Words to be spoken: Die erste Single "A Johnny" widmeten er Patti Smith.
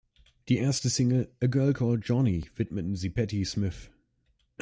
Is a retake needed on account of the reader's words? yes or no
yes